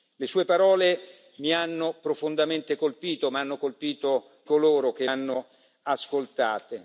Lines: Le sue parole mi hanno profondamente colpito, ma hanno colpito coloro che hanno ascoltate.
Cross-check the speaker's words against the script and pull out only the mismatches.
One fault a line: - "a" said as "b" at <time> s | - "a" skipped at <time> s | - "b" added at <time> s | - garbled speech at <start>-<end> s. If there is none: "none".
none